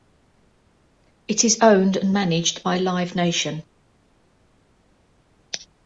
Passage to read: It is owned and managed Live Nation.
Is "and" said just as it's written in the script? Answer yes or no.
yes